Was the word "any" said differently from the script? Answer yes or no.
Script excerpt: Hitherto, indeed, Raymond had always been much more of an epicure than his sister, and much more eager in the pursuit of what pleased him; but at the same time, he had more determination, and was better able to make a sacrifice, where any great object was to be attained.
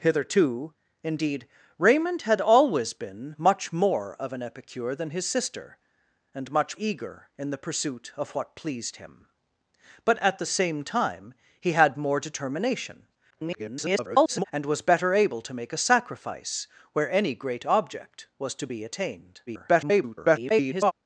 no